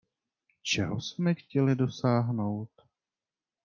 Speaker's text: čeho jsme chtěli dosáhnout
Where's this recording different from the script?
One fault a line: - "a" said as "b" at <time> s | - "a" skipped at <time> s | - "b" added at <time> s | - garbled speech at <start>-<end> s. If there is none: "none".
none